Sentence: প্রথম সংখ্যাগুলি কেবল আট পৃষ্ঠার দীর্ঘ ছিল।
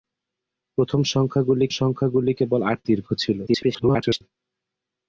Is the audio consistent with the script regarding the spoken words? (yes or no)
no